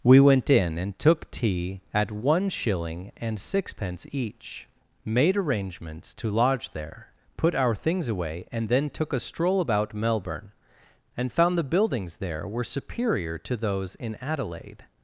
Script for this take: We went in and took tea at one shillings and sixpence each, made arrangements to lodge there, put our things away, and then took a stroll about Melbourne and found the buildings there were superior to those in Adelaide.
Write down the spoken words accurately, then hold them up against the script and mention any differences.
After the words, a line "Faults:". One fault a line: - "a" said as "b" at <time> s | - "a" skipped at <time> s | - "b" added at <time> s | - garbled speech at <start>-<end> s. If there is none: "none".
We went in and took tea at one shilling and sixpence each, made arrangements to lodge there, put our things away, and then took a stroll about Melbourne and found the buildings there were superior to those in Adelaide.
Faults:
- "shillings" said as "shilling" at 2.5 s